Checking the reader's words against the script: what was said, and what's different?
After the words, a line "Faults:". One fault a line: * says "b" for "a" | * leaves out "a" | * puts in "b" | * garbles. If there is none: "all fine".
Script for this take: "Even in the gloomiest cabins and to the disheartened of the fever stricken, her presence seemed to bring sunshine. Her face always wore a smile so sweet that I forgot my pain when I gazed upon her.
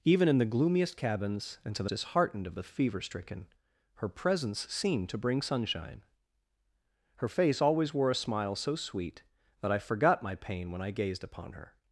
"Even in the gloomiest cabins and to the disheartened of the fever stricken, her presence seemed to bring sunshine. Her face always wore a smile so sweet that I forgot my pain when I gazed upon her.
Faults:
all fine